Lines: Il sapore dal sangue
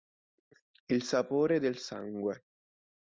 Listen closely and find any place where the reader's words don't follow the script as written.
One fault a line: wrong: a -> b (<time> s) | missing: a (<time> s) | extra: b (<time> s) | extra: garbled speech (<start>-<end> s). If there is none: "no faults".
wrong: dal -> del (1.6 s)